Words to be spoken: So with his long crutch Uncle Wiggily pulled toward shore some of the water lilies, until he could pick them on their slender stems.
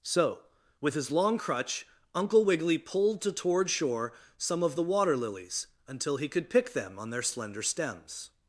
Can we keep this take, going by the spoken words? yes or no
no